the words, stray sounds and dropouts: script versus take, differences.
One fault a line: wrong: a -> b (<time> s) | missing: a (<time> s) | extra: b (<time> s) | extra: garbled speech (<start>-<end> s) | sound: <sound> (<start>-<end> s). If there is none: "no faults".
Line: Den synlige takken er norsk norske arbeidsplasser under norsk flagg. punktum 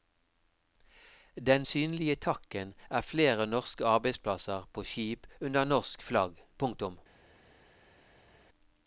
wrong: norsk -> flere (3.0 s)
extra: på skip (4.7 s)